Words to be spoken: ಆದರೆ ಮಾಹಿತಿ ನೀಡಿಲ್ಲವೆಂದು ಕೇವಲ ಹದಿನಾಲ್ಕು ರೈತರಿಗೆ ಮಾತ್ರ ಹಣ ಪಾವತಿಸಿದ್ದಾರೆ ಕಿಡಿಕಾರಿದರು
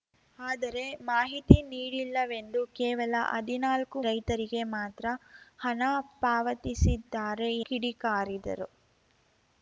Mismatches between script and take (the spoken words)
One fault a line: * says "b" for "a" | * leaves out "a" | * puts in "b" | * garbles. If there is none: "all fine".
all fine